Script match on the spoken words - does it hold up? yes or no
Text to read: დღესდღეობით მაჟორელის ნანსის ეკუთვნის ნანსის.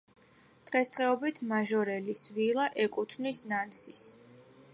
no